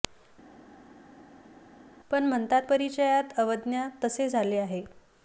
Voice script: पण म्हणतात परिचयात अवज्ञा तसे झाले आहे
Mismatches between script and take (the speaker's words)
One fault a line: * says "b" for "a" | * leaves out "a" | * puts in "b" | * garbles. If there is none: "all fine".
all fine